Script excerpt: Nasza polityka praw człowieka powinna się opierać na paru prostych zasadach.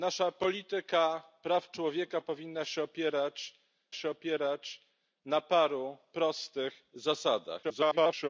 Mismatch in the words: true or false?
true